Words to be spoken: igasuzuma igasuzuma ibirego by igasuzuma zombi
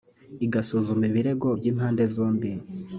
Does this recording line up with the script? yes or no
no